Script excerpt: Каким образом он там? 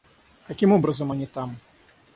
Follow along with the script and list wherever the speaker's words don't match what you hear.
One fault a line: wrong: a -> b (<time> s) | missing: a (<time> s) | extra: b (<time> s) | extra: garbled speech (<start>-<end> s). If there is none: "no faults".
wrong: он -> они (1.1 s)